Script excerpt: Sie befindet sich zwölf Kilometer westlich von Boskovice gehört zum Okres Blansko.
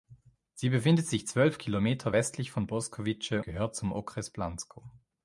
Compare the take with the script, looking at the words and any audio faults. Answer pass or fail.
pass